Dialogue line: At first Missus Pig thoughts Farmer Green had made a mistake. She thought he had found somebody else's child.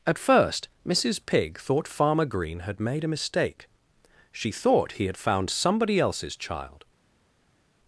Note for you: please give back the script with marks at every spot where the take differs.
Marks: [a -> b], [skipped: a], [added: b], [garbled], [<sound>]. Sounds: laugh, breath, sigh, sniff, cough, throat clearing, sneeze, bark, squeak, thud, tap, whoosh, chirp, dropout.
At first Missus Pig [thoughts -> thought] Farmer Green had made a mistake. She thought he had found somebody else's child.